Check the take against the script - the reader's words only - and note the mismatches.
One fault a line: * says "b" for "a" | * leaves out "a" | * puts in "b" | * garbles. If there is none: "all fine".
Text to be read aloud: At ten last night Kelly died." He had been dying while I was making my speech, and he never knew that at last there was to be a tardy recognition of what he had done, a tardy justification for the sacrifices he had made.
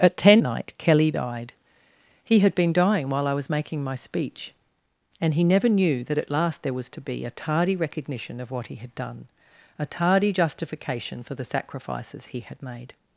* leaves out "last"